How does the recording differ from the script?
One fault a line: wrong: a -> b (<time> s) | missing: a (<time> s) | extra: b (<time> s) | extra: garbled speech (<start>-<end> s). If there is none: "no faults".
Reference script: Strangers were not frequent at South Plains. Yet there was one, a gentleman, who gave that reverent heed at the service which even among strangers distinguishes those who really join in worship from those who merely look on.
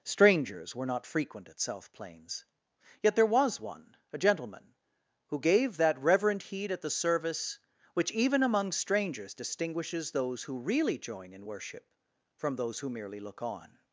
no faults